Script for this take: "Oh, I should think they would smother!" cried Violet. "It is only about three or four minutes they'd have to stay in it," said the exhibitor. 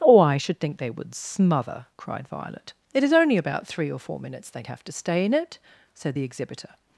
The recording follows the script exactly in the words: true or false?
true